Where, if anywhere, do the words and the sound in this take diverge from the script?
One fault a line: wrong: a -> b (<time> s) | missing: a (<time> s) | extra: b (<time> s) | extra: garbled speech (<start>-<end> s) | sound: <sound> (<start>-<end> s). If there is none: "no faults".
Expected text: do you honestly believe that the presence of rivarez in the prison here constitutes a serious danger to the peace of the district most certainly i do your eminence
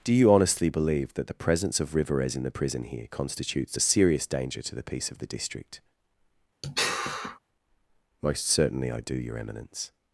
sound: sigh (6.6-7.4 s)